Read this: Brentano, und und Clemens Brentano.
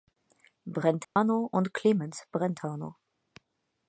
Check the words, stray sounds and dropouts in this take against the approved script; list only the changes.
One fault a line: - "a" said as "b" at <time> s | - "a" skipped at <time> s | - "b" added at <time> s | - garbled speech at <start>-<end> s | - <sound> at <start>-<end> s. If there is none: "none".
- dropout at 1.0-1.2 s
- "und" skipped at 1.7 s